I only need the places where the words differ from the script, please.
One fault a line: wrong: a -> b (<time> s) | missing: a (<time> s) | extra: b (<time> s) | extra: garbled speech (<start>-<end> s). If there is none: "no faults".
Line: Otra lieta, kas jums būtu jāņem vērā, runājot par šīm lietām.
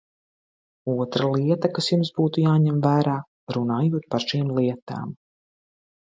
no faults